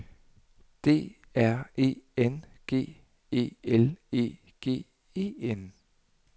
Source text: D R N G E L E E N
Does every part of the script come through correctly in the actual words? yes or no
no